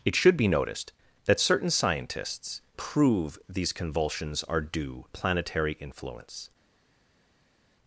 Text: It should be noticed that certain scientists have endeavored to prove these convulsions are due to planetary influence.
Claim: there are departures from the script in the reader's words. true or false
true